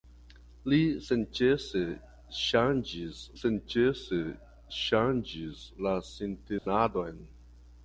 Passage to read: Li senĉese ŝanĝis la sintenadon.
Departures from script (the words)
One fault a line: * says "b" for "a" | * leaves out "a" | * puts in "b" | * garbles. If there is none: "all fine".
* puts in "senĉese ŝanĝis"